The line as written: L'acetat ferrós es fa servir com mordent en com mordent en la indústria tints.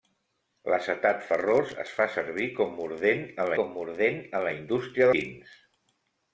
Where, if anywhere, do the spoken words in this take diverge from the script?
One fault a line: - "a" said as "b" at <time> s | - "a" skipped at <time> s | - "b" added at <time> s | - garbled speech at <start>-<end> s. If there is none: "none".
none